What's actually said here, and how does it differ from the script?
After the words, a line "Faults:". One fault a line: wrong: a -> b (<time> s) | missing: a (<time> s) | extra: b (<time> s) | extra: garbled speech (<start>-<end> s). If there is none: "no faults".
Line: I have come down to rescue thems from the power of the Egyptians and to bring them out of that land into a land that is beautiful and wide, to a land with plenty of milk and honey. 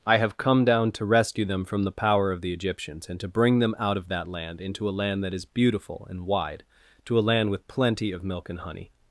I have come down to rescue them from the power of the Egyptians and to bring them out of that land into a land that is beautiful and wide, to a land with plenty of milk and honey.
Faults:
wrong: thems -> them (1.4 s)